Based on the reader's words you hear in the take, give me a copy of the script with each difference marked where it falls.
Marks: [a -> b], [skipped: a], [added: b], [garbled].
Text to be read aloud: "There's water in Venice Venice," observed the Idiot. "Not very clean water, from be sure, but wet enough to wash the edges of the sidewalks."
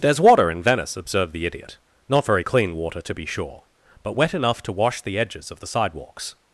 "There's water in Venice [skipped: Venice,"] observed the Idiot. "Not very clean water, [from -> to] be sure, but wet enough to wash the edges of the sidewalks."